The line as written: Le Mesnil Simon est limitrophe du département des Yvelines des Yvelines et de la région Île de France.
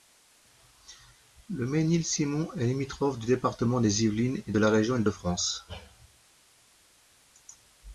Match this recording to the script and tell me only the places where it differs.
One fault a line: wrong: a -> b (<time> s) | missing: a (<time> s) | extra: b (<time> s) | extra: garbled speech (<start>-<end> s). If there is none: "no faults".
missing: des Yvelines (4.4 s)